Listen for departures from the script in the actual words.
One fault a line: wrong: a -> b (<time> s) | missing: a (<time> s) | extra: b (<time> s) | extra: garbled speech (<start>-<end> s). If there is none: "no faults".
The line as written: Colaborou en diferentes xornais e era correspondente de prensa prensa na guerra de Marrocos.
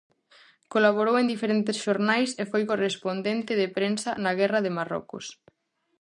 wrong: era -> foi (2.5 s)
missing: prensa (4.1 s)